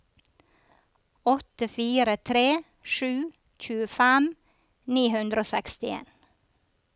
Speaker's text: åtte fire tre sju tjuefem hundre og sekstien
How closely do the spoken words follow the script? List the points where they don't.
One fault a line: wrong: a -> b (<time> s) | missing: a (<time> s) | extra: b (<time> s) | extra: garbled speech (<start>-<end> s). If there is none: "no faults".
extra: ni (4.9 s)